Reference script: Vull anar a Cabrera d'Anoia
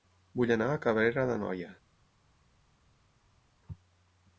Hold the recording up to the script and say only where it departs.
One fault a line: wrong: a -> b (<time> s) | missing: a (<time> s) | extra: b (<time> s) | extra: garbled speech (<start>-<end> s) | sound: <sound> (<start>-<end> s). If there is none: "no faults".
no faults